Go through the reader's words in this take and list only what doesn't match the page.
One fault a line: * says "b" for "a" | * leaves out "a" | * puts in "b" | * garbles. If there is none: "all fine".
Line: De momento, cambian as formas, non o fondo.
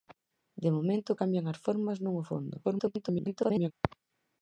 * garbles